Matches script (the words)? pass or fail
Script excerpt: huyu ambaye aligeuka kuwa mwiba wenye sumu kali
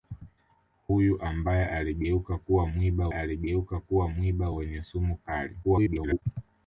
fail